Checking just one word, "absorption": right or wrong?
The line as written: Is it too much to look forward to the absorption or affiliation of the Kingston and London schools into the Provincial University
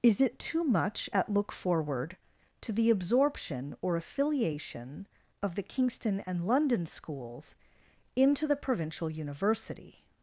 right